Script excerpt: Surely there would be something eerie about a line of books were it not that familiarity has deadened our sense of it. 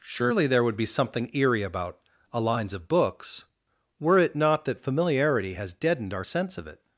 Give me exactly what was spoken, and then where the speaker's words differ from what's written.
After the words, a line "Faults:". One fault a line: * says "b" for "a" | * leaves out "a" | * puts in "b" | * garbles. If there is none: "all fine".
Surely there would be something eerie about a lines of books were it not that familiarity has deadened our sense of it.
Faults:
* says "lines" for "line"